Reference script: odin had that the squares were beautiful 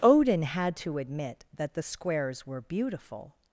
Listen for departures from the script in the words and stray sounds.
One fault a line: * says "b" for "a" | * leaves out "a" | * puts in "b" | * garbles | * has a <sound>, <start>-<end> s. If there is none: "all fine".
* puts in "to admit"